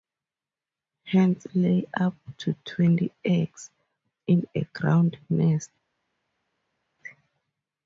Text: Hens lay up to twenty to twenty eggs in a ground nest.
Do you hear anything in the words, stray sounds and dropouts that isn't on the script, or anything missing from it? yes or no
yes